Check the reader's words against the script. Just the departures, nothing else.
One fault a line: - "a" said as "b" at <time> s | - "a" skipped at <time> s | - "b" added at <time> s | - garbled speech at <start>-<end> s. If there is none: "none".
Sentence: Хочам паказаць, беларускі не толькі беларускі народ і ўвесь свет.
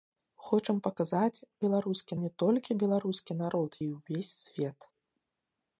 none